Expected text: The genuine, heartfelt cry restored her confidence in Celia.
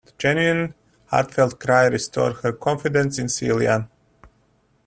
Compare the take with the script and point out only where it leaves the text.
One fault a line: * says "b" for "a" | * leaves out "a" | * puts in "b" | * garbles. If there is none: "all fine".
all fine